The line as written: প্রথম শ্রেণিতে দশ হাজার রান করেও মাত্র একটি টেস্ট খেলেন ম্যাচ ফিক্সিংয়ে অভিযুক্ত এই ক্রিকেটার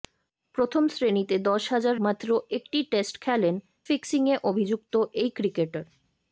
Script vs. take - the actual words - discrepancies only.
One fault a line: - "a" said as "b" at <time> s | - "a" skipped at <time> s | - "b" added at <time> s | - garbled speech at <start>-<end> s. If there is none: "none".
- "রান করেও" skipped at 1.9 s
- "ম্যাচ" skipped at 3.5 s